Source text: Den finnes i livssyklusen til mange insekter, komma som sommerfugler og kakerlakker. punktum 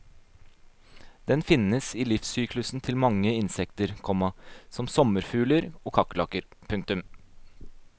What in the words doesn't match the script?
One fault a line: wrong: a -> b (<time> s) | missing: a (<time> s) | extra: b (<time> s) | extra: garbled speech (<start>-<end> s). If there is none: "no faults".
no faults